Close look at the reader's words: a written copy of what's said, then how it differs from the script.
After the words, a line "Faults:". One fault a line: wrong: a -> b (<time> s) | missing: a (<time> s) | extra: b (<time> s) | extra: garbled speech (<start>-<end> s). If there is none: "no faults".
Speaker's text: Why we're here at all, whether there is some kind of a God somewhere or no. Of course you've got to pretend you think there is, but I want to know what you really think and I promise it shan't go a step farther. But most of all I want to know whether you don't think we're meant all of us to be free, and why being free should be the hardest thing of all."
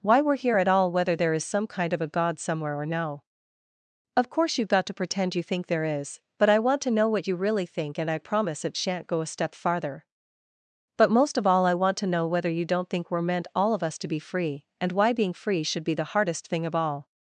Why we're here at all, whether there is some kind of a God somewhere or no. Of course you've got to pretend you think there is, but I want to know what you really think and I promise it shan't go a step farther. But most of all I want to know whether you don't think we're meant all of us to be free, and why being free should be the hardest thing of all."
Faults:
no faults